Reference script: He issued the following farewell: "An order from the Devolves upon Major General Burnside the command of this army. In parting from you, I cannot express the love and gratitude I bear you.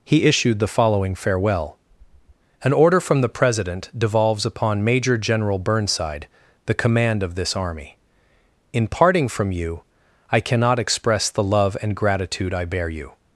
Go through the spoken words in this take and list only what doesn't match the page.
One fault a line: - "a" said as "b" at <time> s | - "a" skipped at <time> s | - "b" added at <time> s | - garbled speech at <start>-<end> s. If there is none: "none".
- "President" added at 3.3 s